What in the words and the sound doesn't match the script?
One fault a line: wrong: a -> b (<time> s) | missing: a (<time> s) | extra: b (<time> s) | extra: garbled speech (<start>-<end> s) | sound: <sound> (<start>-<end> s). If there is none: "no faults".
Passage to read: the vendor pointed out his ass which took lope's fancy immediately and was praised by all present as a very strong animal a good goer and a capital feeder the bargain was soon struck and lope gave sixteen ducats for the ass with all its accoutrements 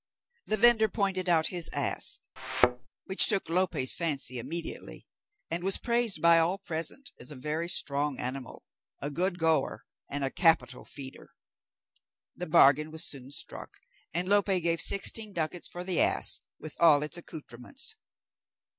sound: thud (2.4-2.9 s)